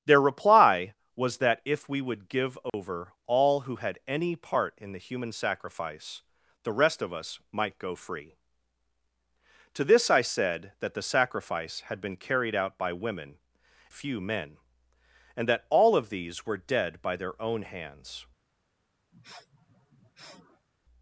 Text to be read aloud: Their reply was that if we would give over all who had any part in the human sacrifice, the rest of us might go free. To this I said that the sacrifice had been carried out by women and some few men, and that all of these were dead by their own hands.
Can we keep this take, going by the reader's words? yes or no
no